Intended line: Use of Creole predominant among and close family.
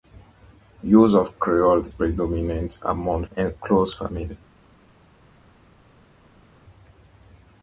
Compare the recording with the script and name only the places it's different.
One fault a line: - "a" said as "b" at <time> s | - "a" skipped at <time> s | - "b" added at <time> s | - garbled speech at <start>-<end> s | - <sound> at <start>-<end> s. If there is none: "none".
none